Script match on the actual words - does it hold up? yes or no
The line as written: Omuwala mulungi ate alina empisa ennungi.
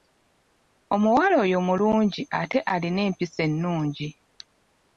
no